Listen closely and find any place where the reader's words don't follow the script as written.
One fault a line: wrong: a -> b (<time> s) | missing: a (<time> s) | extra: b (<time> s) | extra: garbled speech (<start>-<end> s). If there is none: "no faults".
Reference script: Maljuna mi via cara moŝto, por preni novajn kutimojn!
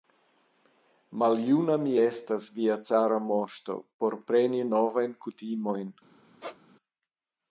extra: estas (2.0 s)